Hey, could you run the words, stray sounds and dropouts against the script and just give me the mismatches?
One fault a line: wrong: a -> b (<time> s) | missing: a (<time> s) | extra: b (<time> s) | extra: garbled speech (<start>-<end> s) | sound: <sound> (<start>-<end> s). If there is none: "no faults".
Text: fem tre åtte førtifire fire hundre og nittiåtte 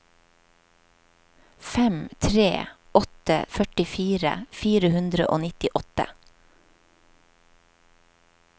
no faults